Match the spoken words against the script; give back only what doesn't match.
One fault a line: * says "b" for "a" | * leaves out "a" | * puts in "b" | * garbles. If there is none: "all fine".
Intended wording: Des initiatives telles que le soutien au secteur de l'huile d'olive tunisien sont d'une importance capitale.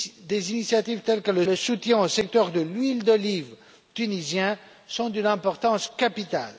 * puts in "le"